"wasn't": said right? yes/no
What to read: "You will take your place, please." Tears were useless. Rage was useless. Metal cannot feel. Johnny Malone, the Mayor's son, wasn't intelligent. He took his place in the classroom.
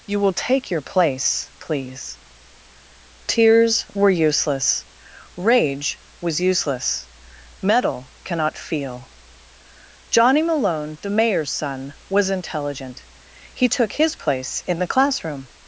no